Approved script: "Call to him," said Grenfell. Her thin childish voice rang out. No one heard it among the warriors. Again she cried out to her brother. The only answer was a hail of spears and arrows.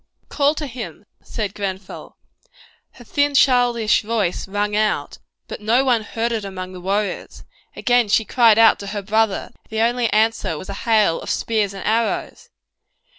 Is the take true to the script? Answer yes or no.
no